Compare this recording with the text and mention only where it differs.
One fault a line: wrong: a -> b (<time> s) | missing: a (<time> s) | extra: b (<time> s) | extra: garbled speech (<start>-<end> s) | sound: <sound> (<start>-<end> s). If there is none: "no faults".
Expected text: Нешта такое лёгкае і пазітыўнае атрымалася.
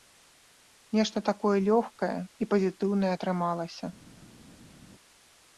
no faults